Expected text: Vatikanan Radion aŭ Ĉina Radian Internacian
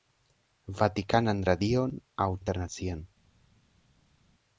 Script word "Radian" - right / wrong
wrong